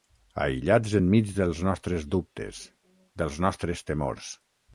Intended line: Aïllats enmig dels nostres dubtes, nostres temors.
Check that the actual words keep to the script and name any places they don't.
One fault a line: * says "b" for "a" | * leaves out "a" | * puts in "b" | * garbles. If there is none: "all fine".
* puts in "dels"